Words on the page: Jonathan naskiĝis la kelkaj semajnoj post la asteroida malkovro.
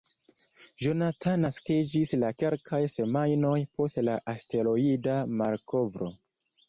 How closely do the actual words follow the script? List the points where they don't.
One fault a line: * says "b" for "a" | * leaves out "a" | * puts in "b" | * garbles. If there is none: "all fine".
all fine